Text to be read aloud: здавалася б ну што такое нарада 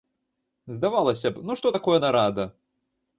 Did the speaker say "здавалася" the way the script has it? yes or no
yes